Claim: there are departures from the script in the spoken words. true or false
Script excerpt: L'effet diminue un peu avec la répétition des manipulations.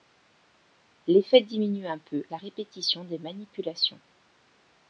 true